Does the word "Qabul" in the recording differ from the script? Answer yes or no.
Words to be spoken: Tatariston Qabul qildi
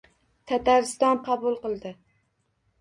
no